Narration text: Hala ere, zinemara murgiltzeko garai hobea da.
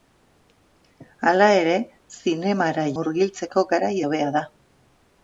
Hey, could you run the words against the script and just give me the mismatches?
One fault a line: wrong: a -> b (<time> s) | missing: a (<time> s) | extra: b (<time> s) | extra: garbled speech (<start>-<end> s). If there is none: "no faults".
no faults